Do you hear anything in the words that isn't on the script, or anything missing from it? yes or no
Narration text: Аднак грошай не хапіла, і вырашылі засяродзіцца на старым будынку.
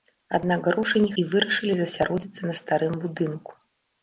yes